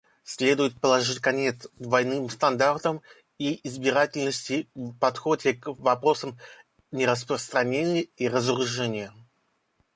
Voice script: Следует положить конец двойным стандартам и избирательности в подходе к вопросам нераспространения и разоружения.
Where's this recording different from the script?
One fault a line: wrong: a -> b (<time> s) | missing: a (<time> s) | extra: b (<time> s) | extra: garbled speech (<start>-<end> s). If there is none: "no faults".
no faults